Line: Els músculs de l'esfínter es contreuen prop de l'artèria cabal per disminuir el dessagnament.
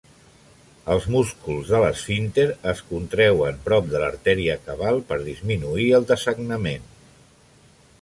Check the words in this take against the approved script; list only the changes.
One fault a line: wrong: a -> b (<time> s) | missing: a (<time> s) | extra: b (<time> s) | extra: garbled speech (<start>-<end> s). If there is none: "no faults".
no faults